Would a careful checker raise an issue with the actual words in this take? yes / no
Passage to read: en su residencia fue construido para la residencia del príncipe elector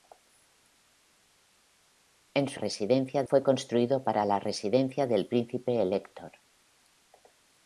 no